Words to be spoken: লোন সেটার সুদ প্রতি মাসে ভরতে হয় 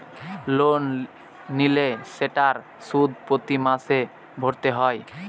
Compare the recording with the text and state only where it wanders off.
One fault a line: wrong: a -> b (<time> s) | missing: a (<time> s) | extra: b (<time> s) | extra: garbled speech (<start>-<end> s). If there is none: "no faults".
extra: নিলে (1.6 s)